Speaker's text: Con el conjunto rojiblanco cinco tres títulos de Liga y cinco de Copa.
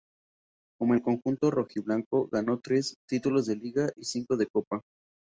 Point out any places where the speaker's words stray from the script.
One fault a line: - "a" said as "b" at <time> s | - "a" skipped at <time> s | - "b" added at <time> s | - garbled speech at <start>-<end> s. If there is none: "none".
- "cinco" said as "ganó" at 2.3 s